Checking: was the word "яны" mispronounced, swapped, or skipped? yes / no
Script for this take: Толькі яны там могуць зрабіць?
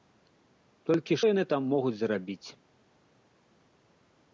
no